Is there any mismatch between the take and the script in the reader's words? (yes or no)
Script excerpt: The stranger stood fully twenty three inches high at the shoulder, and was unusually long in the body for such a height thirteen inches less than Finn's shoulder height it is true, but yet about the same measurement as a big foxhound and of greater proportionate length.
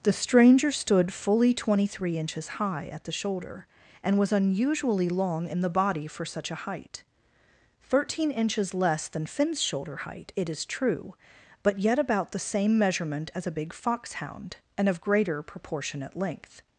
no